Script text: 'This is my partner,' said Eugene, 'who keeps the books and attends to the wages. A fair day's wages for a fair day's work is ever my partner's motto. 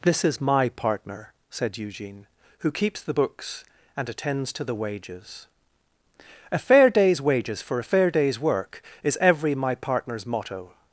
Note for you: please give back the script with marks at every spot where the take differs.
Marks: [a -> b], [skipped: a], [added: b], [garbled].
'This is my partner,' said Eugene, 'who keeps the books and attends to the wages. A fair day's wages for a fair day's work is [ever -> every] my partner's motto.